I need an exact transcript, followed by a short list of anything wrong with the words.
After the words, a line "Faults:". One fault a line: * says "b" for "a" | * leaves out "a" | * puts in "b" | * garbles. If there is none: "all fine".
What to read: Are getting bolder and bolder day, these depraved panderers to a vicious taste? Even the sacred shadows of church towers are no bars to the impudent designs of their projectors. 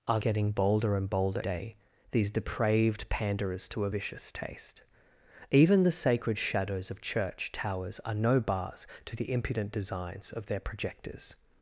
Are getting bolder and bolder day, these depraved panderers to a vicious taste? Even the sacred shadows of church towers are no bars to the impudent designs of their projectors.
Faults:
all fine